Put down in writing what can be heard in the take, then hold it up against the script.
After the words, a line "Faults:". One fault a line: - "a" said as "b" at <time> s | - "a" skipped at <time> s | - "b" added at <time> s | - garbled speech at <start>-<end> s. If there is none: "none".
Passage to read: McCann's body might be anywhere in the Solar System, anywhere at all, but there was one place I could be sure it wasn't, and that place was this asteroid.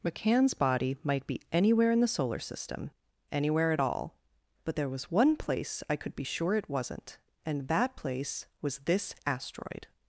McCann's body might be anywhere in the Solar System, anywhere at all, but there was one place I could be sure it wasn't, and that place was this asteroid.
Faults:
none